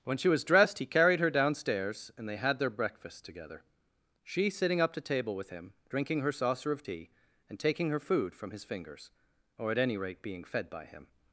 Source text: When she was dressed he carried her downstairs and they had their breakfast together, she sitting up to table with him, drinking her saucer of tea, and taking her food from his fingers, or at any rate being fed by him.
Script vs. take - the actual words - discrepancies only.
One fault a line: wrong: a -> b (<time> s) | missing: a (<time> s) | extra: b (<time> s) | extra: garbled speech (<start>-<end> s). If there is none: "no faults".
no faults